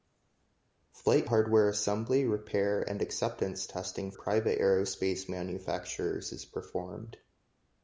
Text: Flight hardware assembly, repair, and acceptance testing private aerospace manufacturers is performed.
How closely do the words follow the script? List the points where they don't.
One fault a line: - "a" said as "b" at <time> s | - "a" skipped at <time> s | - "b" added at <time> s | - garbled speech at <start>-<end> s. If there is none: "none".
none